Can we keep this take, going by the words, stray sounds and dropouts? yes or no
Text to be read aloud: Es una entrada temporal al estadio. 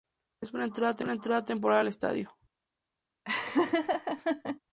no